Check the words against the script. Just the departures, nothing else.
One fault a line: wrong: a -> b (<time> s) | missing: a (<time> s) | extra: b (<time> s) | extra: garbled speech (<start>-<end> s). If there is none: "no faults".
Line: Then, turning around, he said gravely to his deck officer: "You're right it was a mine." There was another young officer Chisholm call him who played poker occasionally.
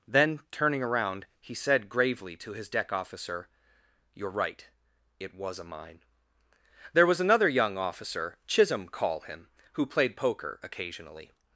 no faults